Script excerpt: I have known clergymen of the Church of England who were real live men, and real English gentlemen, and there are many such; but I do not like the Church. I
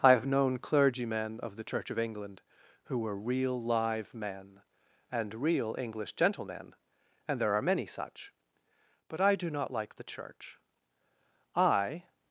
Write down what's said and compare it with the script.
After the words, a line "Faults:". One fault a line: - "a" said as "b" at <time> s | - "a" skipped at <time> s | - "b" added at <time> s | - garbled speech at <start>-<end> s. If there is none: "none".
I have known clergymen of the Church of England who were real live men, and real English gentlemen, and there are many such; but I do not like the Church. I
Faults:
none